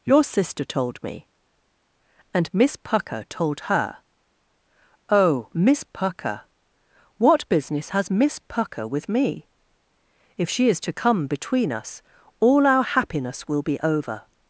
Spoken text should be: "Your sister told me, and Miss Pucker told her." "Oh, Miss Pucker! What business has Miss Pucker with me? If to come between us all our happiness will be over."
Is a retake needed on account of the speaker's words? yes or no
yes